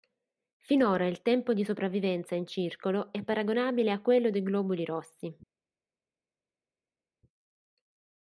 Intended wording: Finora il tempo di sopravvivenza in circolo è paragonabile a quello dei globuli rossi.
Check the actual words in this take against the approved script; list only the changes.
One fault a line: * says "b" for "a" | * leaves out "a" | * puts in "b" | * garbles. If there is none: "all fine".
all fine